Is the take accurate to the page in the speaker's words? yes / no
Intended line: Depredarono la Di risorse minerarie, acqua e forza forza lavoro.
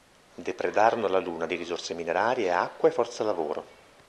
no